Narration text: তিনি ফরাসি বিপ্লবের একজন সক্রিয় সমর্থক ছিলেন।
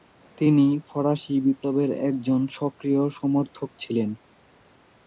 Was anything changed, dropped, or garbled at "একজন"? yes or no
no